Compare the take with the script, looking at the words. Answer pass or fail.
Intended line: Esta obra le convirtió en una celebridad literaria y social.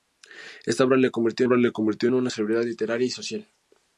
fail